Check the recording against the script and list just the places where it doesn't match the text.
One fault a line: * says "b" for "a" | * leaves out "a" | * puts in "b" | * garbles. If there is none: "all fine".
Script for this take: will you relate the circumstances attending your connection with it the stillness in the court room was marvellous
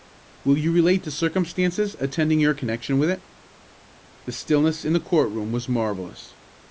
all fine